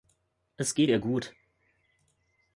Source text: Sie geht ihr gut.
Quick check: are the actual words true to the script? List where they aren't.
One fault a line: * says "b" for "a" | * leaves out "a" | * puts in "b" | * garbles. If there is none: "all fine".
* says "Es" for "Sie"